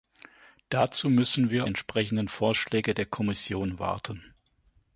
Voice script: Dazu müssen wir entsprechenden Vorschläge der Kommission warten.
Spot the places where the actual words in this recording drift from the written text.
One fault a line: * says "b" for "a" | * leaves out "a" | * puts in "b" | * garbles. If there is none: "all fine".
all fine